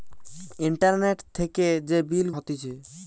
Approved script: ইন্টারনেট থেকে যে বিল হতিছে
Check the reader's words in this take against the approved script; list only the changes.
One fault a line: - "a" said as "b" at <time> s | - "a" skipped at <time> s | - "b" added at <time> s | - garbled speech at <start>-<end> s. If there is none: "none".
none